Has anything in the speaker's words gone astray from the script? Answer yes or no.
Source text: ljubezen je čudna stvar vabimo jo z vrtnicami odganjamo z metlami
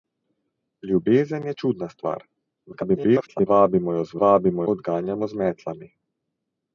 yes